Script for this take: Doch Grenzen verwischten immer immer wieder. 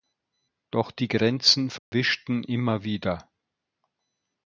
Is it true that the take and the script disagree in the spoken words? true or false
true